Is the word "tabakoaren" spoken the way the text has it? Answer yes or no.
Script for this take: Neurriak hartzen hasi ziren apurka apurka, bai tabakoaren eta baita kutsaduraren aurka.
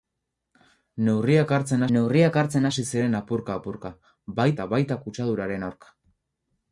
no